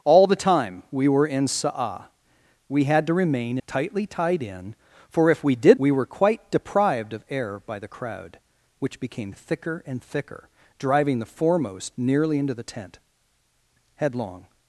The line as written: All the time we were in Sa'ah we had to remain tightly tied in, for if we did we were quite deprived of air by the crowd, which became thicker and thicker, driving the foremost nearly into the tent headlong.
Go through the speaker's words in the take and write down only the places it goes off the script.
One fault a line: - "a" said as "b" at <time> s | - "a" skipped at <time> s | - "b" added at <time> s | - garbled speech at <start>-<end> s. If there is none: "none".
none